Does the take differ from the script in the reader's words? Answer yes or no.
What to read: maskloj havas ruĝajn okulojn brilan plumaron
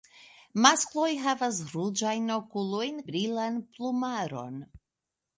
no